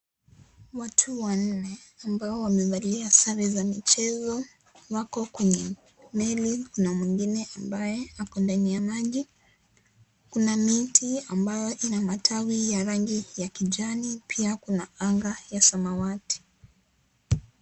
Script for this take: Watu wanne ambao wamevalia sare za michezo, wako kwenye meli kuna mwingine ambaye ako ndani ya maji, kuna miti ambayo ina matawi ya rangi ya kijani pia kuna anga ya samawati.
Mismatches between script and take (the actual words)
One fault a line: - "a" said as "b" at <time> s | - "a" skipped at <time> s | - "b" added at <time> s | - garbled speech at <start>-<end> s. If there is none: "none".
none